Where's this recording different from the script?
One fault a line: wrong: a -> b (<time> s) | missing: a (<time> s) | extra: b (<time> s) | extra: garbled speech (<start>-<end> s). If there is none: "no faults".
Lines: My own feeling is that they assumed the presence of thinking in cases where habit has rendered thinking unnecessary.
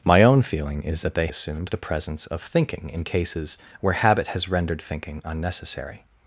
no faults